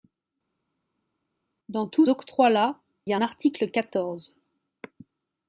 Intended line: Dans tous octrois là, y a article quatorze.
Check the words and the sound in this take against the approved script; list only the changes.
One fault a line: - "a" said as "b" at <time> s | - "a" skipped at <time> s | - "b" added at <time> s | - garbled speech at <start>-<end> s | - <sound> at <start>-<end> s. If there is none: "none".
none